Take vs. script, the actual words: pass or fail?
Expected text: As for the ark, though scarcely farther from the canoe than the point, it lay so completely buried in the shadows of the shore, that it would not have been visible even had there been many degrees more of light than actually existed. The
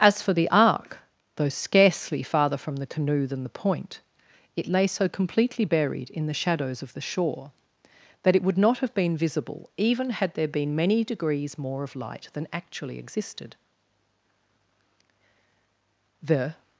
pass